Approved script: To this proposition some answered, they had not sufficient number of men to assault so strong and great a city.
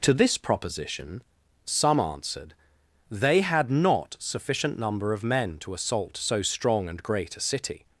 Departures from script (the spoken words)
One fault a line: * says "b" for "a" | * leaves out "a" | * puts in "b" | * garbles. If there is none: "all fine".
all fine